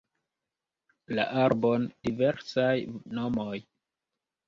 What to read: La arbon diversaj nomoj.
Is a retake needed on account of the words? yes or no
no